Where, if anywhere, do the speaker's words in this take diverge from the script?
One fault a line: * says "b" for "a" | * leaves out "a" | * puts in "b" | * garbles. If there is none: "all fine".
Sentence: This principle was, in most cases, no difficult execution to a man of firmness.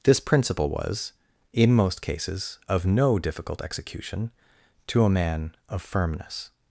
* puts in "of"